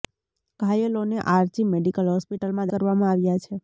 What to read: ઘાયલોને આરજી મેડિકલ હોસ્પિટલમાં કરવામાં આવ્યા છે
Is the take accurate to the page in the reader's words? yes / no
yes